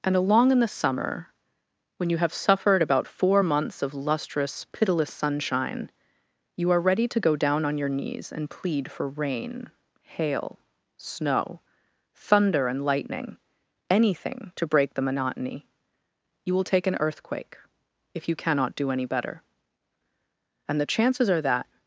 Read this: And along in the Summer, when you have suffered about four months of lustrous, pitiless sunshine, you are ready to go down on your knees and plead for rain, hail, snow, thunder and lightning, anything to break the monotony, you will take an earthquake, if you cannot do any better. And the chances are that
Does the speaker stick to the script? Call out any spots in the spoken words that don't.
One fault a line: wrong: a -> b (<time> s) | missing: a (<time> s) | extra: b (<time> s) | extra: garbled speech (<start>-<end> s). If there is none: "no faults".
no faults